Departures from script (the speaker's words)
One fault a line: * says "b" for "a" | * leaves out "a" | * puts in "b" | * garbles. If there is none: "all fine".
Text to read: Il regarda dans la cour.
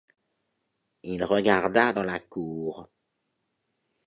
all fine